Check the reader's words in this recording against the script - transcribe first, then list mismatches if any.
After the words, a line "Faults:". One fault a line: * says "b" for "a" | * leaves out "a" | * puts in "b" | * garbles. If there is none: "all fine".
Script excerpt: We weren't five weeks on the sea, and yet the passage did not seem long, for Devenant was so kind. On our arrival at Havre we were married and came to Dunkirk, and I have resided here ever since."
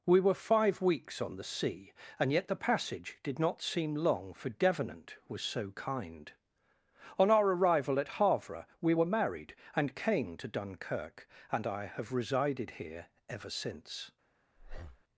We were five weeks on the sea, and yet the passage did not seem long, for Devenant was so kind. On our arrival at Havre we were married and came to Dunkirk, and I have resided here ever since."
Faults:
* says "were" for "weren't"